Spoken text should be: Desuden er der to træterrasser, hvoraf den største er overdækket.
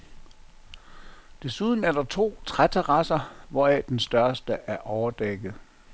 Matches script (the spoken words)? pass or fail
pass